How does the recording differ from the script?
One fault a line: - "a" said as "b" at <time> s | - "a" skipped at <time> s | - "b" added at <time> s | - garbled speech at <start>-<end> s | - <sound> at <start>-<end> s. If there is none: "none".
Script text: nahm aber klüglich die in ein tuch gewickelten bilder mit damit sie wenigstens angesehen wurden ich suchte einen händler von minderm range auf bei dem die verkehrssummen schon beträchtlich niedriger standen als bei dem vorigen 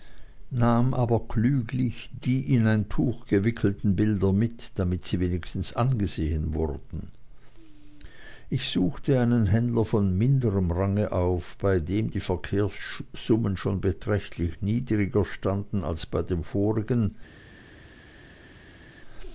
none